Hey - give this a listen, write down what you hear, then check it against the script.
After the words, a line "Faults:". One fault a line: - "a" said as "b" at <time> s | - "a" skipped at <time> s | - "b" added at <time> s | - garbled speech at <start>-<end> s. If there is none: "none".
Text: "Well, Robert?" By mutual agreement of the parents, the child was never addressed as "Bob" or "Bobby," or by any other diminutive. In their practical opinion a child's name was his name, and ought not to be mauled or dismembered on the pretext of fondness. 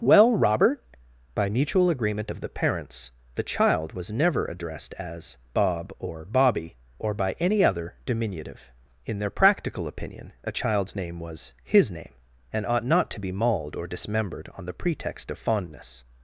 "Well, Robert?" By mutual agreement of the parents, the child was never addressed as "Bob" or "Bobby," or by any other diminutive. In their practical opinion a child's name was his name, and ought not to be mauled or dismembered on the pretext of fondness.
Faults:
none